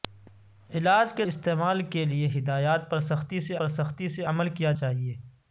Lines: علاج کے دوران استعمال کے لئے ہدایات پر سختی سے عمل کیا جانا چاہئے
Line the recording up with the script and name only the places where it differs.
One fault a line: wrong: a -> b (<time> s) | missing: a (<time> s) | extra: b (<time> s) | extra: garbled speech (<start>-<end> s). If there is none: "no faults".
missing: دوران (1.2 s)
extra: پر سختی سے (3.6 s)
missing: جانا (4.7 s)